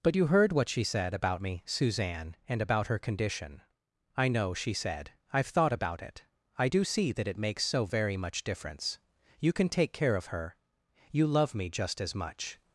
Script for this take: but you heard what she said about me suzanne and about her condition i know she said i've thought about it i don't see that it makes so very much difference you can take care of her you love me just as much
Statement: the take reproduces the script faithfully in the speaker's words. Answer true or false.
false